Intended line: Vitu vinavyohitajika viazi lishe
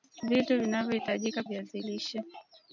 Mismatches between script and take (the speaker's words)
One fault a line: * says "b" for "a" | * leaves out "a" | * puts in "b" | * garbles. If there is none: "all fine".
all fine